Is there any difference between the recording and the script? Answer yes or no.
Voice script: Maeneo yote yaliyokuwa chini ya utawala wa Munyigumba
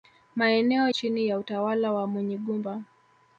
yes